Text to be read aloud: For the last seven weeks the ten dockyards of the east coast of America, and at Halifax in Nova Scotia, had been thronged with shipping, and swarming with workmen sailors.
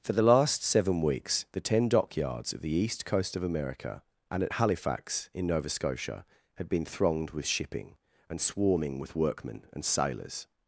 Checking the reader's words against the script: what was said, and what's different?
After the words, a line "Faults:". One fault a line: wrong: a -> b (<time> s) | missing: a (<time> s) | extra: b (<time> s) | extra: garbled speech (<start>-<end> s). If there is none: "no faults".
For the last seven weeks the ten dockyards of the east coast of America, and at Halifax in Nova Scotia, had been thronged with shipping, and swarming with workmen and sailors.
Faults:
extra: and (9.7 s)